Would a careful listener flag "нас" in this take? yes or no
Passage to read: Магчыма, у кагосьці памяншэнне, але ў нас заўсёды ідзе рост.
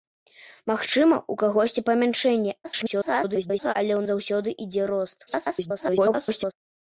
yes